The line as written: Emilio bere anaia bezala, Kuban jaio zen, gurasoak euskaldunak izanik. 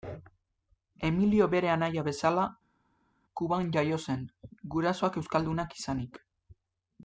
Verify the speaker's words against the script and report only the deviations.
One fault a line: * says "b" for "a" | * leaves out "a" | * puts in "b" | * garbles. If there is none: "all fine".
all fine